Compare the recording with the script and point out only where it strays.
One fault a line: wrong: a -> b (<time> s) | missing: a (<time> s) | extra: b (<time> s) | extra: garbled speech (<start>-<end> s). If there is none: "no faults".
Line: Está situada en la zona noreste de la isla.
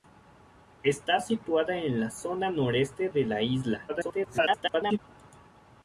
extra: garbled speech (3.9-5.0 s)